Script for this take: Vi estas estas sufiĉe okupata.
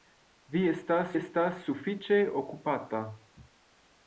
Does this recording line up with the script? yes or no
yes